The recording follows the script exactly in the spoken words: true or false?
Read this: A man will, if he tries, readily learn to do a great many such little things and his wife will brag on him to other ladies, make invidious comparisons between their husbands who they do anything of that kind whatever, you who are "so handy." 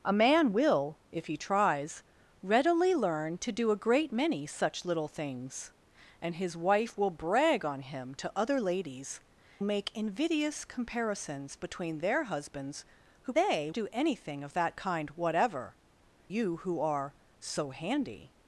true